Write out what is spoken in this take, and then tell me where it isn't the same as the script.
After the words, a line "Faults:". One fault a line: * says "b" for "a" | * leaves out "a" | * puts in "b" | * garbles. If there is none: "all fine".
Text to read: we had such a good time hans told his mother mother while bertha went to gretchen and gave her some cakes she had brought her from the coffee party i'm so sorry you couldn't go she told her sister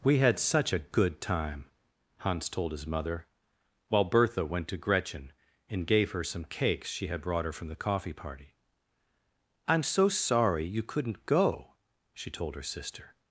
we had such a good time hans told his mother while bertha went to gretchen and gave her some cakes she had brought her from the coffee party i'm so sorry you couldn't go she told her sister
Faults:
* leaves out "mother"